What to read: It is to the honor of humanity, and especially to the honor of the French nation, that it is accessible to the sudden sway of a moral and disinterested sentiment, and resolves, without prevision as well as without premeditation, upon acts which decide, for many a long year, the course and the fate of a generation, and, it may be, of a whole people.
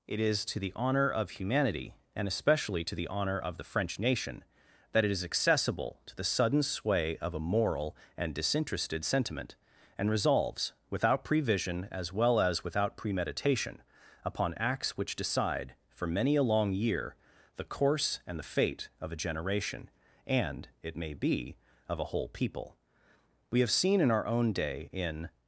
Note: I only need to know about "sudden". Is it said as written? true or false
true